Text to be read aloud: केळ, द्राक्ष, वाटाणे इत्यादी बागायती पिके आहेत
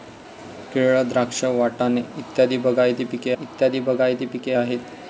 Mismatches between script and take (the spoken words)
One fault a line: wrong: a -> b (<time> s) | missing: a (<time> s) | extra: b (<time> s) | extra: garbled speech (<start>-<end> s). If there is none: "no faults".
extra: इत्यादी बागायती पिके (3.4 s)